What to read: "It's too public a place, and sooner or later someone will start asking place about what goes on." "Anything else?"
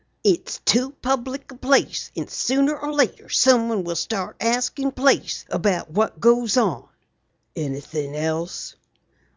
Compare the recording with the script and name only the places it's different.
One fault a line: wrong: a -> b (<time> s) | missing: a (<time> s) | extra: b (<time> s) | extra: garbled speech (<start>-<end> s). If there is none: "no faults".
no faults